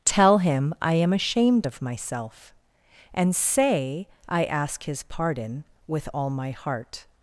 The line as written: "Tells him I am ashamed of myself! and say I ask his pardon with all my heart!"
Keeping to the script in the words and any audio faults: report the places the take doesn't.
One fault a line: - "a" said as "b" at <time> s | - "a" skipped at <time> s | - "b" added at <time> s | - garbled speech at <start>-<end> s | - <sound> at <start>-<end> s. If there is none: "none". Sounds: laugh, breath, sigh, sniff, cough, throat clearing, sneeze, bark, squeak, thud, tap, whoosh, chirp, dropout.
- "Tells" said as "Tell" at 0.1 s